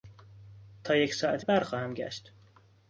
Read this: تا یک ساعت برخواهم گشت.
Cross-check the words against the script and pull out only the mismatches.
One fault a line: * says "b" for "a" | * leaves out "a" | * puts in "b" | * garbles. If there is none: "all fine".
all fine